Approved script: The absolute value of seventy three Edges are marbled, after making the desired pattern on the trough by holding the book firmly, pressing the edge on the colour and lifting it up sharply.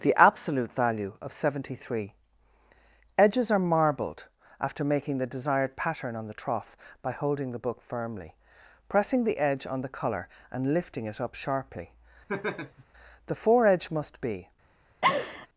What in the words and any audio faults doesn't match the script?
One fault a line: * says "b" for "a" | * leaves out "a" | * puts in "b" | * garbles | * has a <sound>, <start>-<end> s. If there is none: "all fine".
* has a laugh, 12.3-12.9 s
* puts in "The foredge must be"
* has a laugh, 15.0-15.5 s